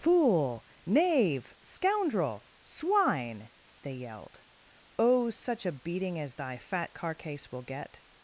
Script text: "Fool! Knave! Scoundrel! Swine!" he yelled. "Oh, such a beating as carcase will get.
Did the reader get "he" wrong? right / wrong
wrong